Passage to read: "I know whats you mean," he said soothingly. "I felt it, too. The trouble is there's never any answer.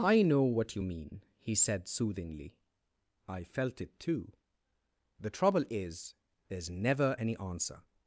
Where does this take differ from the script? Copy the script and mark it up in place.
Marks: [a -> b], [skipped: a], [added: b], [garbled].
"I know [whats -> what] you mean," he said soothingly. "I felt it, too. The trouble is there's never any answer.